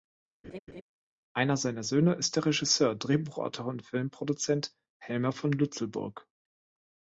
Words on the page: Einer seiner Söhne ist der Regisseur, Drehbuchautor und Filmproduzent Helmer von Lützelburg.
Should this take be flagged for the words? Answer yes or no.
no